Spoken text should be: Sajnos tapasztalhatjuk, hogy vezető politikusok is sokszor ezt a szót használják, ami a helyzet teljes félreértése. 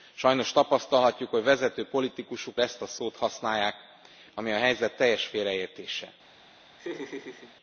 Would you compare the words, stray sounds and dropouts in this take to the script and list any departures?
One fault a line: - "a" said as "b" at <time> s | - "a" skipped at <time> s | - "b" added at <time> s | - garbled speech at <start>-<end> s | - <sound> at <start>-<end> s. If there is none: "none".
- "is sokszor" skipped at 2.5 s
- laugh at 6.8-7.6 s